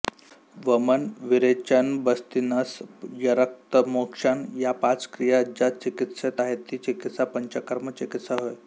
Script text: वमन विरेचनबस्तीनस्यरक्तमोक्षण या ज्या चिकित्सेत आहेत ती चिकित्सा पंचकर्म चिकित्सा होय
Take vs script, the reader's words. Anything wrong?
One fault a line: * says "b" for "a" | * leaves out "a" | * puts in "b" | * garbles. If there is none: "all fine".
* puts in "पाच क्रिया"